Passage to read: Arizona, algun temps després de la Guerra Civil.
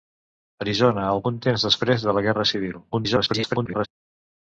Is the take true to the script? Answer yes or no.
no